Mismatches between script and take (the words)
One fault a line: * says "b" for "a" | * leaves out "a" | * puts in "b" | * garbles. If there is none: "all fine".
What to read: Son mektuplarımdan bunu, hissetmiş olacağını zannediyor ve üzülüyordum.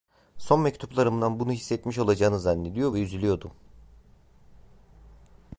all fine